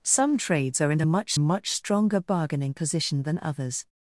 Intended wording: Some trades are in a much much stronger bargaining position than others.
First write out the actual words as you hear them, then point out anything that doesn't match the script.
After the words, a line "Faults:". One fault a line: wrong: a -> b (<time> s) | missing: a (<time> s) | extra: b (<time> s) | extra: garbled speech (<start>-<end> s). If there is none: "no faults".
Some trades are in a much much stronger bargaining position than others.
Faults:
no faults